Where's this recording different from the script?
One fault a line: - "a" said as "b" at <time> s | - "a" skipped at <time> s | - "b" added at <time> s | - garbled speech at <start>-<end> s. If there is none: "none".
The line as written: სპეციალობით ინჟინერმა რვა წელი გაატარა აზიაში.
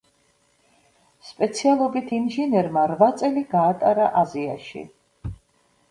none